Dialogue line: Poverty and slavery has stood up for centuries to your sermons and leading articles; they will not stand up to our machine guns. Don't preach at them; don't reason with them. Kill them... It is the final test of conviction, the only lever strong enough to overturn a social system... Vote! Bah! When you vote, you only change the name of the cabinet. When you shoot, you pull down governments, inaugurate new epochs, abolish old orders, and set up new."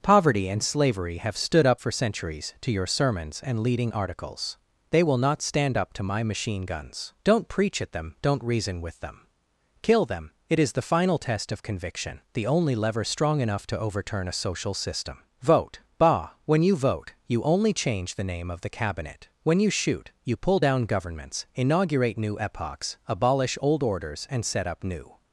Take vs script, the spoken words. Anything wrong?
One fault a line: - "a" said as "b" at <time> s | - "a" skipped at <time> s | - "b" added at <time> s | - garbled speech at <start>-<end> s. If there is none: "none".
- "has" said as "have" at 1.2 s
- "our" said as "my" at 6.0 s